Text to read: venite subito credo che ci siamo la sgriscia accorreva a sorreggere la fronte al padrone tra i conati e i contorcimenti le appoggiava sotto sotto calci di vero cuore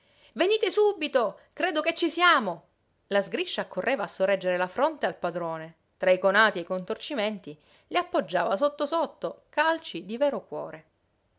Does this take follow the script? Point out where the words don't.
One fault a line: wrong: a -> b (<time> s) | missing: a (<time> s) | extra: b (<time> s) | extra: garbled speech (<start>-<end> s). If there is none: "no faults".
no faults